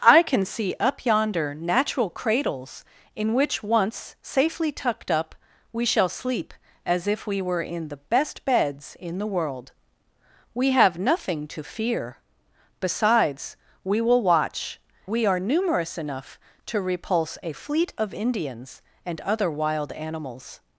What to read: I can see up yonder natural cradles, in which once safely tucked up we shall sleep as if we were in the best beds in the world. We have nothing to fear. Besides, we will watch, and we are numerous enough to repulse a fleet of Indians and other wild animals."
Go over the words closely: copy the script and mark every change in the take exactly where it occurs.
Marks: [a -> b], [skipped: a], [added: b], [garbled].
I can see up yonder natural cradles, in which once safely tucked up we shall sleep as if we were in the best beds in the world. We have nothing to fear. Besides, we will watch, [skipped: and] we are numerous enough to repulse a fleet of Indians and other wild animals."